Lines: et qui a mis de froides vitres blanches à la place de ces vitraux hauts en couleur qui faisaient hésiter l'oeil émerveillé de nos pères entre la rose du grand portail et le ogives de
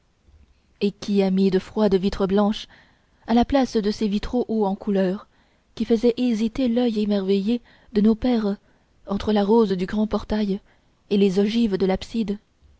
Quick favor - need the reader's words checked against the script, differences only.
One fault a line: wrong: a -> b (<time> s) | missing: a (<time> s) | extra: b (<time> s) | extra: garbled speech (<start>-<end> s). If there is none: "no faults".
wrong: le -> les (11.2 s)